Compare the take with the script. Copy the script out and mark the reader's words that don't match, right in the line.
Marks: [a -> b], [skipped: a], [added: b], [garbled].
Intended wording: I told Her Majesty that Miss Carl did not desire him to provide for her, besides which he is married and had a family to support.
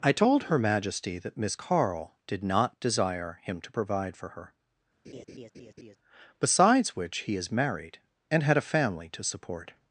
I told Her Majesty that Miss Carl did not desire him to provide for her, besides which he is married and had a family to support.